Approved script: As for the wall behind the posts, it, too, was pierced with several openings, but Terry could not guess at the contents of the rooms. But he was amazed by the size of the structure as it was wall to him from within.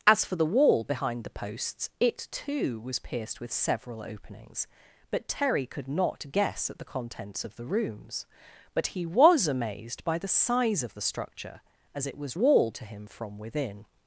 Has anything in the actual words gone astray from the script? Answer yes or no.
no